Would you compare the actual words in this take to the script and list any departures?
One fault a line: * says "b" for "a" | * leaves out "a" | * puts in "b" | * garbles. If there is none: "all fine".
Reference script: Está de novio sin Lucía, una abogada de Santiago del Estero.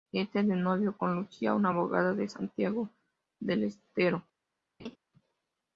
* says "con" for "sin"